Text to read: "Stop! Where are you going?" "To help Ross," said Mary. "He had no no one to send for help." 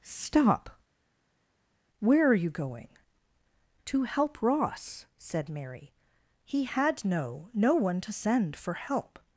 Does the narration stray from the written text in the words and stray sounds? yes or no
no